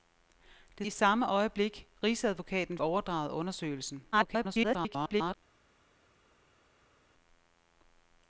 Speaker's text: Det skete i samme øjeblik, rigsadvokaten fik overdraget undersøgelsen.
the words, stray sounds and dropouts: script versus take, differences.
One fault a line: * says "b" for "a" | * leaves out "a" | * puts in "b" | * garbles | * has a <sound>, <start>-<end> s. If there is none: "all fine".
* leaves out "skete"
* leaves out "fik"
* garbles